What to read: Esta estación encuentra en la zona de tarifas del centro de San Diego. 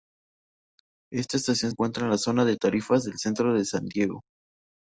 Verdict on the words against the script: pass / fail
pass